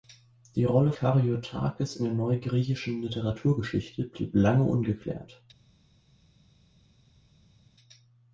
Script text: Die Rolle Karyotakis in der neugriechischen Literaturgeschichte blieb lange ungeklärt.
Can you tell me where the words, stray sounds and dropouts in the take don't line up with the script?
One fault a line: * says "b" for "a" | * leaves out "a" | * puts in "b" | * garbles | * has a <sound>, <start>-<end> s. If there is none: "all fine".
all fine